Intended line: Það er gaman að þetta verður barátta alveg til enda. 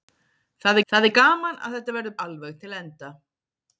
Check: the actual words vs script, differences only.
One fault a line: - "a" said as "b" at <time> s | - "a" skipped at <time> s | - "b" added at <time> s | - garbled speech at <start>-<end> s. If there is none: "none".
- "það" added at 0.9 s
- "barátta" skipped at 2.2 s